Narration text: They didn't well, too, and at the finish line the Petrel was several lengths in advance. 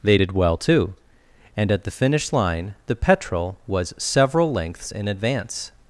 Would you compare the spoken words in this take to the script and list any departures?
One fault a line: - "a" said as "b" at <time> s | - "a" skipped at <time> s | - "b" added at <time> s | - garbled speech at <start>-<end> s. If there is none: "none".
- "didn't" said as "did" at 0.2 s